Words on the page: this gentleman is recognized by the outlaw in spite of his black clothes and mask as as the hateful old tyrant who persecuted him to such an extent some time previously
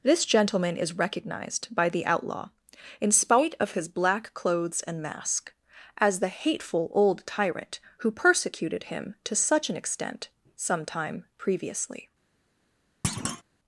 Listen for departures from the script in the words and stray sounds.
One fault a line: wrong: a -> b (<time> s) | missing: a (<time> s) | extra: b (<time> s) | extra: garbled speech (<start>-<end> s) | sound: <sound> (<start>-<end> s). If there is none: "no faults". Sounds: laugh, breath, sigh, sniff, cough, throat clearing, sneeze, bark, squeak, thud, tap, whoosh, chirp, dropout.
missing: as (6.2 s)
sound: thud (13.0-13.4 s)